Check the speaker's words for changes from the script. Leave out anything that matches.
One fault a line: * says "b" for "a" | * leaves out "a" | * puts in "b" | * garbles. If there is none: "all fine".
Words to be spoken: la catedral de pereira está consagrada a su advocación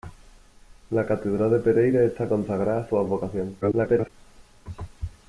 * garbles